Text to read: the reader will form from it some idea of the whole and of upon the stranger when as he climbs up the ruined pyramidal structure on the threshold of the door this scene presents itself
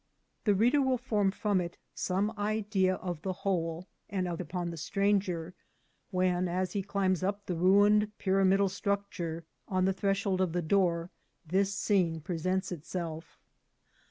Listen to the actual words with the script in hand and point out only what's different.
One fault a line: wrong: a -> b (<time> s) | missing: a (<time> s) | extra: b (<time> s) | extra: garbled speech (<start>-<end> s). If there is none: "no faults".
no faults